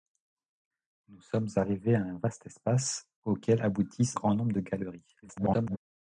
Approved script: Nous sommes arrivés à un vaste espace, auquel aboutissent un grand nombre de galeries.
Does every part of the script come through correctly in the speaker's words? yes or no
no